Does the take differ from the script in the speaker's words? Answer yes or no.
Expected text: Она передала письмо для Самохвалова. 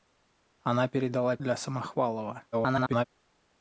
yes